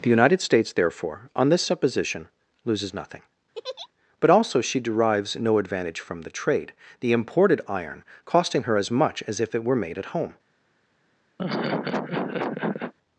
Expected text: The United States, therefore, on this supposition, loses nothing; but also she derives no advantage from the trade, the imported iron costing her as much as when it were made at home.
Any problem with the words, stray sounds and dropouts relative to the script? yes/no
yes